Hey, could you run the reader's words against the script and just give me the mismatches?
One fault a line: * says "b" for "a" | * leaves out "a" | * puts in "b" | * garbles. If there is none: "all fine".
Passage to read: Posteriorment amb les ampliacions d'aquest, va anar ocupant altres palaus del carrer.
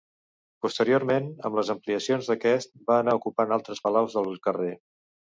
all fine